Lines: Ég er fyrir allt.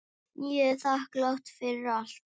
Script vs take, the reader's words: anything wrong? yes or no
yes